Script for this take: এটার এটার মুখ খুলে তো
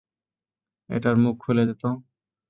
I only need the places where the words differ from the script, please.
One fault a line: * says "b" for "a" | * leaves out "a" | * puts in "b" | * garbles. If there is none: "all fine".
* leaves out "এটার"
* puts in "দে"